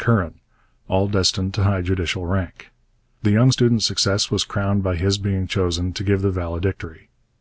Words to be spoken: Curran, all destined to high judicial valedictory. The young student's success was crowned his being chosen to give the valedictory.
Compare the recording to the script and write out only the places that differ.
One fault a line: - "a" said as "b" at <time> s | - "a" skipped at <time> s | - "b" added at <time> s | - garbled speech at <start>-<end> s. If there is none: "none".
- "valedictory" said as "rank" at 2.2 s
- "by" added at 4.8 s